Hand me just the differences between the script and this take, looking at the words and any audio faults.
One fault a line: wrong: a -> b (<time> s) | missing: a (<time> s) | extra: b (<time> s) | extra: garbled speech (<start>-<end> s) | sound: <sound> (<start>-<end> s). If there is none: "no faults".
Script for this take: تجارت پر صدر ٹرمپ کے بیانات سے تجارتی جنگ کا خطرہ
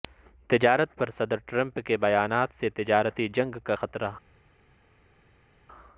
no faults